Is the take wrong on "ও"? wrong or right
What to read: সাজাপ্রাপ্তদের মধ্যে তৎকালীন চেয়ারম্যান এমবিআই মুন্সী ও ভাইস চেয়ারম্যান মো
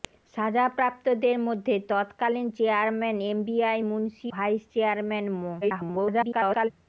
wrong